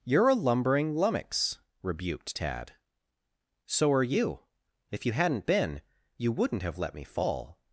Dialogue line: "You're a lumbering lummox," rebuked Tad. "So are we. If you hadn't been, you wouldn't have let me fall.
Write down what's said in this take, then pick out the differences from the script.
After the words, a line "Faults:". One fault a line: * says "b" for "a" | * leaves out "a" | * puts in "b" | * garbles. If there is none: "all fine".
"You're a lumbering lummox," rebuked Tad. "So are you. If you hadn't been, you wouldn't have let me fall.
Faults:
* says "you" for "we"